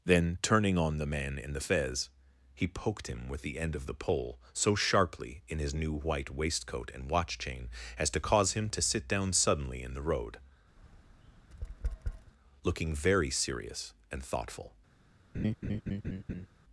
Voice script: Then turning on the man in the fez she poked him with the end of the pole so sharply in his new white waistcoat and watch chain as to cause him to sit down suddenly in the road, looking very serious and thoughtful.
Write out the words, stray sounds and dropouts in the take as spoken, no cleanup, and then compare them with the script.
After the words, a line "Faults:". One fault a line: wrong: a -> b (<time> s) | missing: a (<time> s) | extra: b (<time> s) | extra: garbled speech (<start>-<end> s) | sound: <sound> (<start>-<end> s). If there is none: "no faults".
Then turning on the man in the fez he poked him with the end of the pole so sharply in his new white waistcoat and watch chain as to cause him to sit down suddenly in the road, looking very serious and thoughtful.
Faults:
wrong: she -> he (2.5 s)
sound: tap (10.8-12.3 s)
sound: laugh (15.3-16.5 s)